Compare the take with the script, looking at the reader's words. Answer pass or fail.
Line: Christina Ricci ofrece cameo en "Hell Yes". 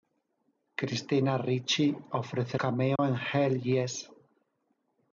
pass